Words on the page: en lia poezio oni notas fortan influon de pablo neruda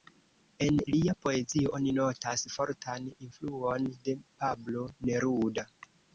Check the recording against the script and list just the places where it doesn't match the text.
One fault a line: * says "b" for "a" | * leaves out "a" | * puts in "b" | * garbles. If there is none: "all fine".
all fine